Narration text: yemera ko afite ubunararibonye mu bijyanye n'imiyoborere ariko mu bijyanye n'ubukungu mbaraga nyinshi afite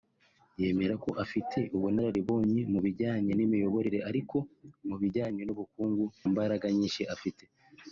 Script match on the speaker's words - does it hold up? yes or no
yes